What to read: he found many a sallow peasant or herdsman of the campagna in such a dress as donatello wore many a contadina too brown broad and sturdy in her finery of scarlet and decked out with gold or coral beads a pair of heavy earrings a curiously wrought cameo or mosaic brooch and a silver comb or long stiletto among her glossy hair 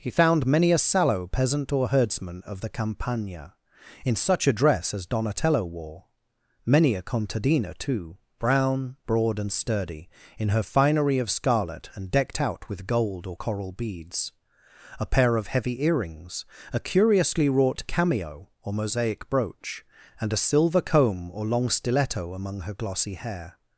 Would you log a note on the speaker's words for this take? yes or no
no